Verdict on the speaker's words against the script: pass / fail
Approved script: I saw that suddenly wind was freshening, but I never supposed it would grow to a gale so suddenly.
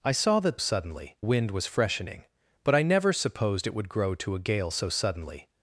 pass